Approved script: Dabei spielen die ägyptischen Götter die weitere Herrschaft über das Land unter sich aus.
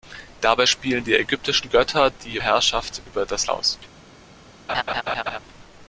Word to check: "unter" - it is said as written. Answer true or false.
false